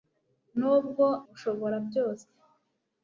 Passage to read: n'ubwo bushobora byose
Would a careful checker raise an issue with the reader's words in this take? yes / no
no